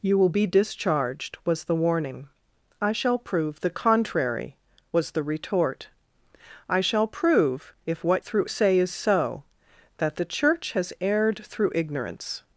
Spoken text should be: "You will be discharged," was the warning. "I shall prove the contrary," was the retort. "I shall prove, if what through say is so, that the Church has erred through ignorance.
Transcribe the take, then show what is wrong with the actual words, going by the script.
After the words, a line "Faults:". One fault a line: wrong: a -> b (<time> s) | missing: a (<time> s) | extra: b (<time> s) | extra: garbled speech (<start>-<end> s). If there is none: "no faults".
"You will be discharged," was the warning. "I shall prove the contrary," was the retort. "I shall prove, if what through say is so, that the Church has erred through ignorance.
Faults:
no faults